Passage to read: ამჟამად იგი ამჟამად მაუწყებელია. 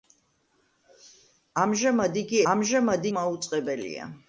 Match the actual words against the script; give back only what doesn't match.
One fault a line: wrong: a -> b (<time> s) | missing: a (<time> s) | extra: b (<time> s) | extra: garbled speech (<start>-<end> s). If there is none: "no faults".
no faults